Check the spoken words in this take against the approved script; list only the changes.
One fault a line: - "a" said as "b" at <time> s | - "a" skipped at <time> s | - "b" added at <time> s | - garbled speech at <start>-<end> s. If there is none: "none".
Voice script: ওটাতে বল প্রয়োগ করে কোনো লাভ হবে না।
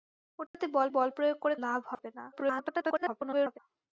- "বল" added at 0.9 s
- "কোনো" skipped at 1.6 s
- garbled speech at 2.3-3.6 s